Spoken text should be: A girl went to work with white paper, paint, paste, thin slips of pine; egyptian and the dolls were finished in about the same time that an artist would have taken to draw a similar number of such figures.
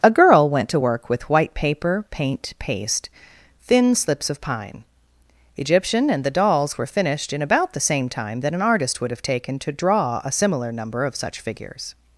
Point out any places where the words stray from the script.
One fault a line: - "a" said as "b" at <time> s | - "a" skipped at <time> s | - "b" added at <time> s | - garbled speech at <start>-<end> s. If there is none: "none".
none